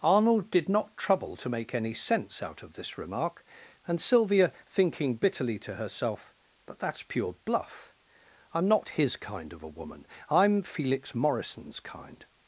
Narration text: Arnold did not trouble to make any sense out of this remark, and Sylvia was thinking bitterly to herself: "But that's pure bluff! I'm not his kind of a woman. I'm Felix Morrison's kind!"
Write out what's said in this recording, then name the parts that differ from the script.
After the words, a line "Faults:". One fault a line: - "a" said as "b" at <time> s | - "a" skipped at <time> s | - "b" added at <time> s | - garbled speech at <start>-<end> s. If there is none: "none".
Arnold did not trouble to make any sense out of this remark, and Sylvia thinking bitterly to herself: "But that's pure bluff! I'm not his kind of a woman. I'm Felix Morrison's kind!"
Faults:
- "was" skipped at 4.5 s